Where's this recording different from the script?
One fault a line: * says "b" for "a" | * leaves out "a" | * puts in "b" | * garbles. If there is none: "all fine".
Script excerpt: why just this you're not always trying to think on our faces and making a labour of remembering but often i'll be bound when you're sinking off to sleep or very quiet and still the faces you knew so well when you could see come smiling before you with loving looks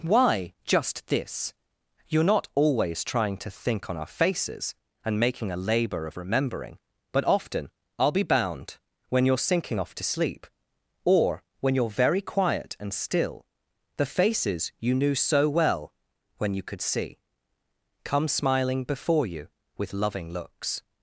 * puts in "when you're"